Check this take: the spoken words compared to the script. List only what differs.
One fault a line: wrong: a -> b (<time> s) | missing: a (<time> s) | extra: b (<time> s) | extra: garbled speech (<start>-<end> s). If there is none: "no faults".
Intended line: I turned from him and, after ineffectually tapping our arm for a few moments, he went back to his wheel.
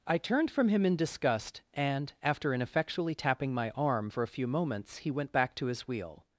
extra: in disgust (0.8 s)
wrong: our -> my (3.5 s)